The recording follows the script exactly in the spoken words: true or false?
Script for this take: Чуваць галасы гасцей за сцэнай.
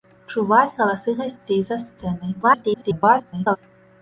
false